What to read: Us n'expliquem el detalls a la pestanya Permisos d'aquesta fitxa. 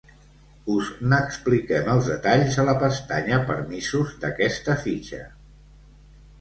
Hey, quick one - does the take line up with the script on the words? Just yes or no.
no